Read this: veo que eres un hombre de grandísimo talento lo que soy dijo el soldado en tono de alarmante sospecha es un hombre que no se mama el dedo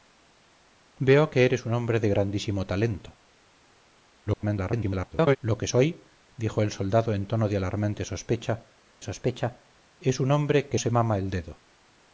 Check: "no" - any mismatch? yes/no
yes